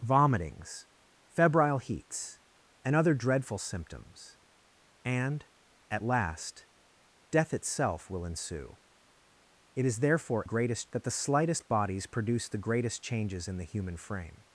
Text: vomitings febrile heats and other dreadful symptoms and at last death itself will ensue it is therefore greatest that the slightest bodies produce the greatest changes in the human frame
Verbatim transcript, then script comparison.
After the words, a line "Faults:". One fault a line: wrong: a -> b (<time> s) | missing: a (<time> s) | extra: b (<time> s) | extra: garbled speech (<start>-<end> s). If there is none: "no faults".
vomitings febrile heats and other dreadful symptoms and at last death itself will ensue it is therefore greatest that the slightest bodies produce the greatest changes in the human frame
Faults:
no faults